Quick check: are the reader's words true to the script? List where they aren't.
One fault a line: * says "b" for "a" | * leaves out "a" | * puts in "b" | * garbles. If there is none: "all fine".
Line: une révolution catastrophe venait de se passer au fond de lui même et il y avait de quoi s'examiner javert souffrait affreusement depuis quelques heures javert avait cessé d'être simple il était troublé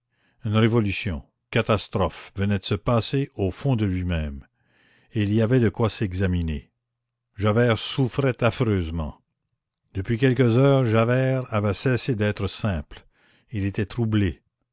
all fine